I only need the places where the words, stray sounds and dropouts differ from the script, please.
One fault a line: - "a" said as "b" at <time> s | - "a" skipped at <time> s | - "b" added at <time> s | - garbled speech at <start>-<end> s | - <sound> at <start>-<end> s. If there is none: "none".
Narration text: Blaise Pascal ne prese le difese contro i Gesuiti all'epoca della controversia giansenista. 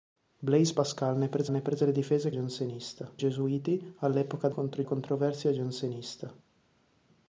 - "ne prese" added at 1.5 s
- "contro" said as "giansenista" at 2.3 s
- "della" said as "contro" at 4.5 s